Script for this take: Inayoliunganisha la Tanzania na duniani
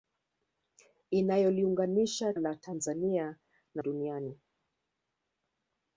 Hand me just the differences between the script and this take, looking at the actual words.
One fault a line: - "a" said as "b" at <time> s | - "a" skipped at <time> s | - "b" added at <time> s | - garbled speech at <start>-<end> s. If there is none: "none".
none